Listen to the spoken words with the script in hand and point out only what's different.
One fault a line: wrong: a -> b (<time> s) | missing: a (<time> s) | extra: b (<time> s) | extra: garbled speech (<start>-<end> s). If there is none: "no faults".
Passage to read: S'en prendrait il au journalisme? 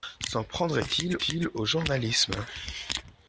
extra: il (1.3 s)